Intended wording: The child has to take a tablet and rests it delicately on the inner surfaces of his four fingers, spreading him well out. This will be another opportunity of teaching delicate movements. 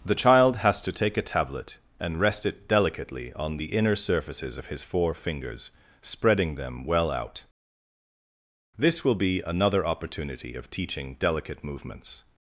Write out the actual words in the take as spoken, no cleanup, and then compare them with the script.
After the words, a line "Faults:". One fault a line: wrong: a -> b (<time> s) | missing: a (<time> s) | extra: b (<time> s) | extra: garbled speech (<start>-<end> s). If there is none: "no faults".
The child has to take a tablet and rest it delicately on the inner surfaces of his four fingers, spreading them well out. This will be another opportunity of teaching delicate movements.
Faults:
wrong: rests -> rest (2.2 s)
wrong: him -> them (6.5 s)